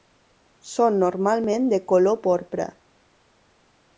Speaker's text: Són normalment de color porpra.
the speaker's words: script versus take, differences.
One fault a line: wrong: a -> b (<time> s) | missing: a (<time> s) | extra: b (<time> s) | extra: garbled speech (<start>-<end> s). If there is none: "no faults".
no faults